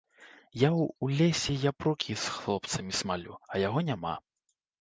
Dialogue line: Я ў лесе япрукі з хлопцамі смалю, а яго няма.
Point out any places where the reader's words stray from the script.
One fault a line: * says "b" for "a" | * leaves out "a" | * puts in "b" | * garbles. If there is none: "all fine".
all fine